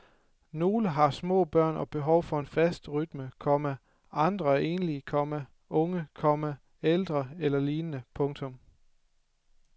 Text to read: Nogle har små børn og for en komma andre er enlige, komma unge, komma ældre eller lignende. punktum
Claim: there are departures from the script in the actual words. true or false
true